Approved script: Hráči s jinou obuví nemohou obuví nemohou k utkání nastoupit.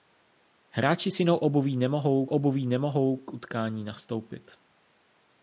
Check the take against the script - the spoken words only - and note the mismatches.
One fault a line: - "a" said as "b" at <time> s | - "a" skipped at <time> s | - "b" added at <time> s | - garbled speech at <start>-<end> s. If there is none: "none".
none